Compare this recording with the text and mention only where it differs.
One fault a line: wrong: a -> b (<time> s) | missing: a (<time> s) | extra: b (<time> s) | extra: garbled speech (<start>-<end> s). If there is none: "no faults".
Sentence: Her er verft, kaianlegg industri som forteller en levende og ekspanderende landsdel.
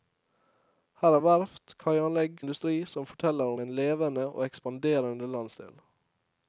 no faults